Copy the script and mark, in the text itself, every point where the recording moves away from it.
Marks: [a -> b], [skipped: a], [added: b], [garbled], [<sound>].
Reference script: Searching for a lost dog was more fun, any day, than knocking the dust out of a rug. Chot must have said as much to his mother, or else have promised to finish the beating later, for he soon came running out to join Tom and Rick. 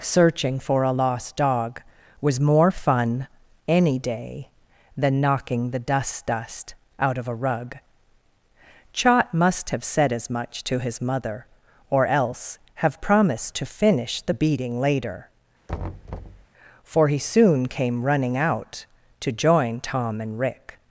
Searching for a lost dog was more fun, any day, than knocking the dust [added: dust] out of a rug. Chot must have said as much to his mother, or else have promised to finish the beating later, [thud] for he soon came running out to join Tom and Rick.